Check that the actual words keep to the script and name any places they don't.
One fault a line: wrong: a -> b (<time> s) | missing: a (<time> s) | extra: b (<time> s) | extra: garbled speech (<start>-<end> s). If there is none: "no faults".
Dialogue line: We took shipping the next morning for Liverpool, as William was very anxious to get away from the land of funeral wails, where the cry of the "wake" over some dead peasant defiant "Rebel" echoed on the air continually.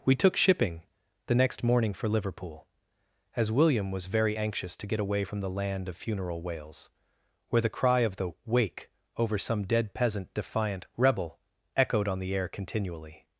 no faults